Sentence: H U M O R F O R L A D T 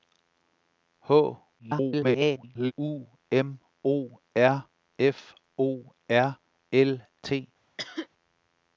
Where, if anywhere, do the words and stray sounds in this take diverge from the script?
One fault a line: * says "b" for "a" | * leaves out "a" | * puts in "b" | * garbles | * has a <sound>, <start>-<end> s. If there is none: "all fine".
* garbles
* leaves out "A D"
* has a cough, 7.8-8.1 s